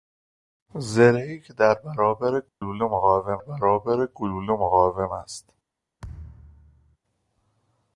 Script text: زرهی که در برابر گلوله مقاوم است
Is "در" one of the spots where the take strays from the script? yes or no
no